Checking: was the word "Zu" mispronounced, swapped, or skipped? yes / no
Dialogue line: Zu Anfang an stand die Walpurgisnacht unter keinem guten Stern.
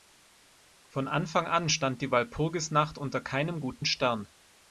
yes